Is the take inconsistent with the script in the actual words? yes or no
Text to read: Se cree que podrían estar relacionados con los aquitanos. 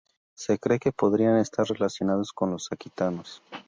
no